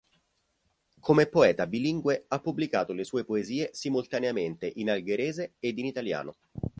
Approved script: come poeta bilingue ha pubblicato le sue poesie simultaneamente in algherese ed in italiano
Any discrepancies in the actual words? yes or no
no